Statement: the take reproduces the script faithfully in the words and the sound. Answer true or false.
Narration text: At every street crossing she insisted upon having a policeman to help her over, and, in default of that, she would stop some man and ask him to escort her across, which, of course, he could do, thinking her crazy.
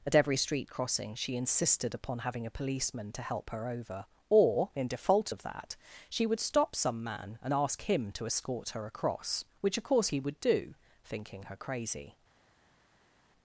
false